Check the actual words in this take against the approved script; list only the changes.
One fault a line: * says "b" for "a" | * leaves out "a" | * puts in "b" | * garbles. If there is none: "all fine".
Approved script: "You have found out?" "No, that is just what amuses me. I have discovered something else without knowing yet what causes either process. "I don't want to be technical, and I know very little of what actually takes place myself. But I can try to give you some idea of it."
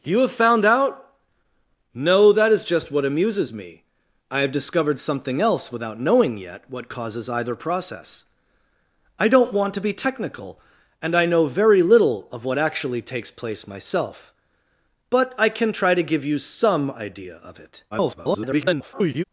* garbles